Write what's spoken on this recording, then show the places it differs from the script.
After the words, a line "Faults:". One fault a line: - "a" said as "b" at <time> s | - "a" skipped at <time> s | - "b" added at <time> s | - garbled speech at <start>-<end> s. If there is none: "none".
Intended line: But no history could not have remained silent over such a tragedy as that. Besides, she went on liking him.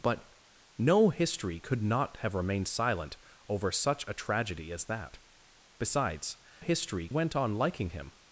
But no history could not have remained silent over such a tragedy as that. Besides, history went on liking him.
Faults:
- "she" said as "history" at 6.6 s